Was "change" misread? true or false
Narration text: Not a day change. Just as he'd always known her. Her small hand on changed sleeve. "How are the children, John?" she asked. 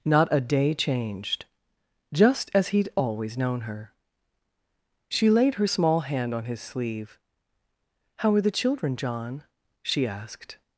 true